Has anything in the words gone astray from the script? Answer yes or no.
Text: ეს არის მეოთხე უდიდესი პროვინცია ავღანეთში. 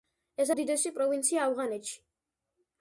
yes